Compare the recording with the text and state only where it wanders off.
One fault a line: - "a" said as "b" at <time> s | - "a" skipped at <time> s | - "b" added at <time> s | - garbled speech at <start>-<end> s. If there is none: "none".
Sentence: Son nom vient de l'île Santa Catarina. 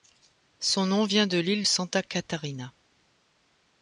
none